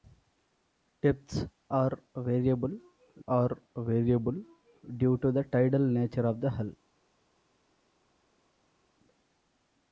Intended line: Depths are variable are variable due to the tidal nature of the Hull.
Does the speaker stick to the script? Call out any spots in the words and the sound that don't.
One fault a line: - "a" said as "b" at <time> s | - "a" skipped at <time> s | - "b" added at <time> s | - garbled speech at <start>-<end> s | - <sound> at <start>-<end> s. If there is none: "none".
none